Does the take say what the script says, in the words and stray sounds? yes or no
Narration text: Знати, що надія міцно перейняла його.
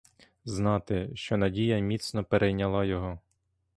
yes